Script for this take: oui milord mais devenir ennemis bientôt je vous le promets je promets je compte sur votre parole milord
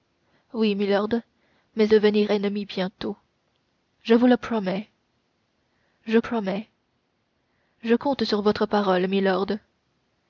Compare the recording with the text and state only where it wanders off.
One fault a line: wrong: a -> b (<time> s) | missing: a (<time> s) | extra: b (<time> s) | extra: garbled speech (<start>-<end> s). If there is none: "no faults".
no faults